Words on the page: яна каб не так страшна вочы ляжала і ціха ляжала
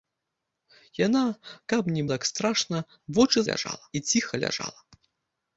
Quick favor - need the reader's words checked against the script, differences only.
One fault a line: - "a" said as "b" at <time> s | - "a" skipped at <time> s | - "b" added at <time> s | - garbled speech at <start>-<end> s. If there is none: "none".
none